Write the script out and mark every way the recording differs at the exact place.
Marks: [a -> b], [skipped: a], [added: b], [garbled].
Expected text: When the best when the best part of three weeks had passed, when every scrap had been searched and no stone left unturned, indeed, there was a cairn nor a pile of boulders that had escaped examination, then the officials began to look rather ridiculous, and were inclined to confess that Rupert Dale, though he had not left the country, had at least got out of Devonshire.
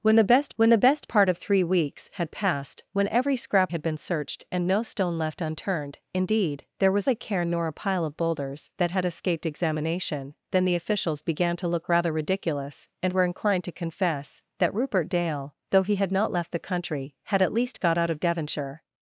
When the best when the best part of three weeks had passed, when every scrap had been searched and no stone left unturned, indeed, there was a cairn nor a pile of boulders that had escaped examination, then the officials began to look rather ridiculous, and were inclined to confess that Rupert Dale, though he had not left the country, had at least got out of Devonshire.